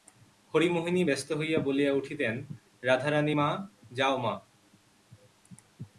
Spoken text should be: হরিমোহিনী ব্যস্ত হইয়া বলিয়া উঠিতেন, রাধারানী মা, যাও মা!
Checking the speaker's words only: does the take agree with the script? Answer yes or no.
yes